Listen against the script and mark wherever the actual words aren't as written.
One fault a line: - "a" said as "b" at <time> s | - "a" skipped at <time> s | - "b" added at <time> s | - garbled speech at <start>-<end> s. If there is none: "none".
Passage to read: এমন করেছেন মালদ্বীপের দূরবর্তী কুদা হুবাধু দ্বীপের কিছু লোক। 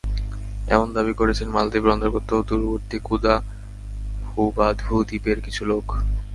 - "দাবি" added at 0.9 s
- "অন্তর্গত" added at 1.9 s